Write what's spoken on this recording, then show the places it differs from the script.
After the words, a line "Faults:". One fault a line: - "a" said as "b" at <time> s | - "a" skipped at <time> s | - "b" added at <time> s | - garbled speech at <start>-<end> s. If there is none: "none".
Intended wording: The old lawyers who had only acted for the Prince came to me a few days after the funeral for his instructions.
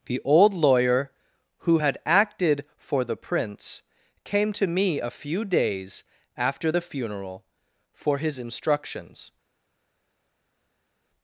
The old lawyer who had acted for the Prince came to me a few days after the funeral for his instructions.
Faults:
- "lawyers" said as "lawyer" at 0.5 s
- "only" skipped at 2.0 s